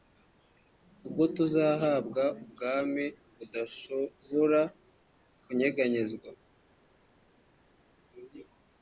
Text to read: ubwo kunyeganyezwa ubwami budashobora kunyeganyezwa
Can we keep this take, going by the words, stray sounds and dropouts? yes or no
no